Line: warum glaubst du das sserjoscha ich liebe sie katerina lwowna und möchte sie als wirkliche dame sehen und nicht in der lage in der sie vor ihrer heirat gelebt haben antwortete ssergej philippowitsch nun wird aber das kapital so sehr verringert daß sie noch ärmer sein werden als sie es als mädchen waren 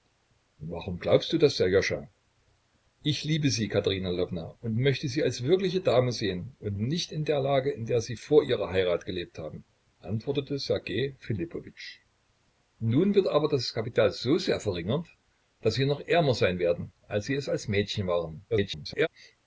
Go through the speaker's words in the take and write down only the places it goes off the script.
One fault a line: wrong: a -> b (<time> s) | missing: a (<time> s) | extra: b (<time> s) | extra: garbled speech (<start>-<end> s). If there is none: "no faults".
extra: garbled speech (18.5-19.1 s)